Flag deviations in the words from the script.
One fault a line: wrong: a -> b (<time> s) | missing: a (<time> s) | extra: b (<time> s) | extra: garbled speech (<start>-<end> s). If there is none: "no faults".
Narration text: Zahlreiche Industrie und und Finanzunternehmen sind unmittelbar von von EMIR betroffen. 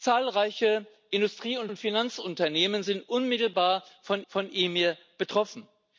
no faults